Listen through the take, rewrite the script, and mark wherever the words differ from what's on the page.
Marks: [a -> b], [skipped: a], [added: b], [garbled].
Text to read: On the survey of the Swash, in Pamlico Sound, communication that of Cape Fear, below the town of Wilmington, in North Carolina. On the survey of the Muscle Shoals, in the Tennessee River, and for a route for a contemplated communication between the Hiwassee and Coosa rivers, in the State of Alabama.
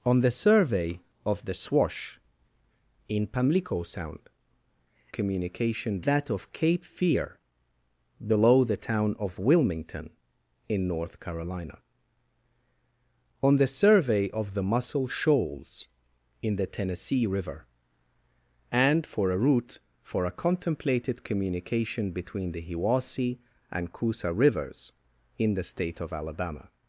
On the survey of the Swash, in Pamlico Sound, communication that of Cape Fear, below the town of Wilmington, in North Carolina. On the survey of the Muscle Shoals, in the Tennessee River, and for a route for a contemplated communication between the Hiwassee and Coosa rivers, in the State of Alabama.